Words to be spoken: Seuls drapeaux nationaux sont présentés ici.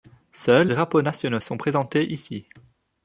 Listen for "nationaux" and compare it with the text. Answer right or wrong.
right